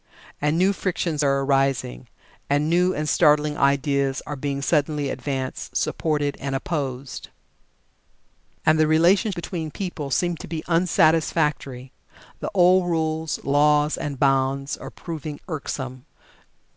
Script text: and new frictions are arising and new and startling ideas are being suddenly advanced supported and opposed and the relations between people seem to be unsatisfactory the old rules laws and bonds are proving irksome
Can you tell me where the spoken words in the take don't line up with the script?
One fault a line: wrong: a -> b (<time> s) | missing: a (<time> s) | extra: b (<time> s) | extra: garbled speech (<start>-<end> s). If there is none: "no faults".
no faults